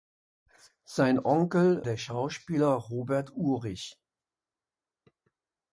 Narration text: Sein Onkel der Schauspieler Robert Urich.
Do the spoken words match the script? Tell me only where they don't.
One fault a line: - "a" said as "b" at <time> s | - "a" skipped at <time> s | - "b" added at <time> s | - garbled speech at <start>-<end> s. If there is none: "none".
none